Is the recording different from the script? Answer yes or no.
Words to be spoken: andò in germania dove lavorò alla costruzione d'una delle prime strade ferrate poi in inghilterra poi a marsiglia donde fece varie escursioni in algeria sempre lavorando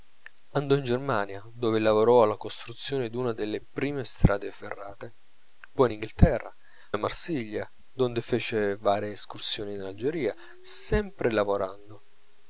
yes